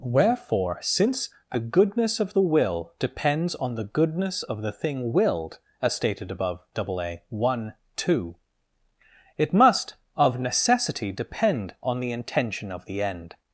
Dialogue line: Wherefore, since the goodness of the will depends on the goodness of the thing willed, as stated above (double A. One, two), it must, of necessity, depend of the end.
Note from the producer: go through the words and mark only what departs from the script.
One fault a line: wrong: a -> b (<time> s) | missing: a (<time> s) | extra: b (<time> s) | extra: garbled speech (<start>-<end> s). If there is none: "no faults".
extra: on the intention (11.8 s)